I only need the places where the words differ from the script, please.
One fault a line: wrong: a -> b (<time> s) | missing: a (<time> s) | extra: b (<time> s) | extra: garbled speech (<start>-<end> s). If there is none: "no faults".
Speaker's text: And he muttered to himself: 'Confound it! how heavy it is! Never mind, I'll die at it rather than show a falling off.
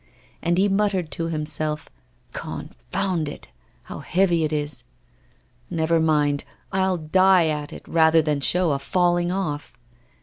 no faults